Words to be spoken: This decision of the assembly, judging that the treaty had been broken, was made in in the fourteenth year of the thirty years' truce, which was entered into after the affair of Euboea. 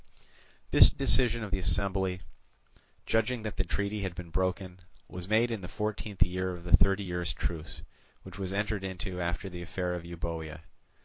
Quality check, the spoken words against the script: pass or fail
fail